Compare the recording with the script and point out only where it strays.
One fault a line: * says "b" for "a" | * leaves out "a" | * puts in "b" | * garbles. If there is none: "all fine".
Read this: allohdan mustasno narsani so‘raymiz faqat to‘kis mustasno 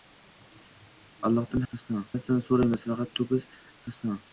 all fine